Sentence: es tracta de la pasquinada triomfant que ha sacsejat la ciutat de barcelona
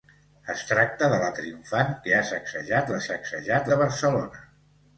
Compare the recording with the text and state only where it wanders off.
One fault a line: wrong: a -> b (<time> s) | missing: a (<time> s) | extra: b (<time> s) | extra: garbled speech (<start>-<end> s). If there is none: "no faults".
missing: pasquinada (1.3 s)
wrong: ciutat -> sacsejat (3.1 s)